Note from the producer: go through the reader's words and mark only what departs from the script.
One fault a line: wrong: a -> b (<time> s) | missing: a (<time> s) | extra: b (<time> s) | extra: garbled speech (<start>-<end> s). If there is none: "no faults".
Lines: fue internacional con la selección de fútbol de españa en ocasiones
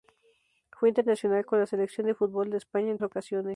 no faults